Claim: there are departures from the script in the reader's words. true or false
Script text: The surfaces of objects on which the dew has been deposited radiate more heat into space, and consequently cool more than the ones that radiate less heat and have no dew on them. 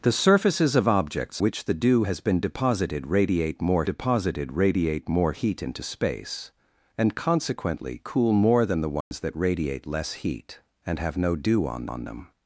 true